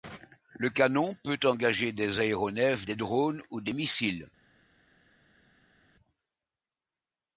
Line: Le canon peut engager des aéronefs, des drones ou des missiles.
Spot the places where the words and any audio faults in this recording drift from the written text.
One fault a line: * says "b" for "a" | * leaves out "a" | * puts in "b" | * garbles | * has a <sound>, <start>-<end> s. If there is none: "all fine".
all fine